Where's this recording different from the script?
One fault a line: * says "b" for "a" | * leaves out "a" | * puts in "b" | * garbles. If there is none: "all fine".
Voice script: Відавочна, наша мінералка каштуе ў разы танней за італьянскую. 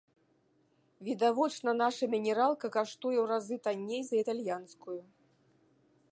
all fine